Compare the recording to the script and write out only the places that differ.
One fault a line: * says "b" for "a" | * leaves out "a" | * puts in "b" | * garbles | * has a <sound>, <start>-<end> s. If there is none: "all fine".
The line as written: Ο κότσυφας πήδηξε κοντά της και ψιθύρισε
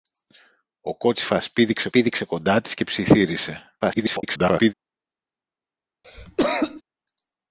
* puts in "πήδηξε"
* garbles
* has a cough, 6.0-6.8 s